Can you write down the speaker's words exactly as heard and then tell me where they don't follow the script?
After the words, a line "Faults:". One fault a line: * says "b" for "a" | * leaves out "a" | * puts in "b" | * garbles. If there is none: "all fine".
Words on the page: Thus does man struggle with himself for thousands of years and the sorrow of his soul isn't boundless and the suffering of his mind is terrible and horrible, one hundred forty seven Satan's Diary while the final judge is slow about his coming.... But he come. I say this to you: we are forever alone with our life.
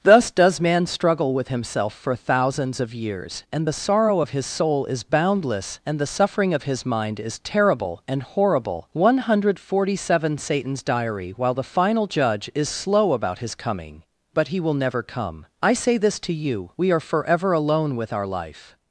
Thus does man struggle with himself for thousands of years and the sorrow of his soul is boundless and the suffering of his mind is terrible and horrible, one hundred forty seven Satan's Diary while the final judge is slow about his coming.... But he will never come. I say this to you: we are forever alone with our life.
Faults:
* says "is" for "isn't"
* puts in "will never"